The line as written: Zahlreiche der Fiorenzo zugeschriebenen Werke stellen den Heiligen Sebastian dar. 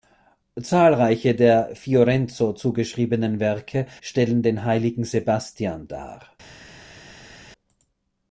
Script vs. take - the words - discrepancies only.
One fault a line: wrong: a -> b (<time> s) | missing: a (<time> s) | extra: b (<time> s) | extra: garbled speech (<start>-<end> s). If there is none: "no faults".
no faults